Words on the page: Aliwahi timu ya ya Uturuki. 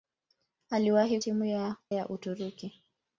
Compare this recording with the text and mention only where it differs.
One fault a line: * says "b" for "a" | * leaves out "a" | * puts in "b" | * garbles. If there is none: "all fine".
all fine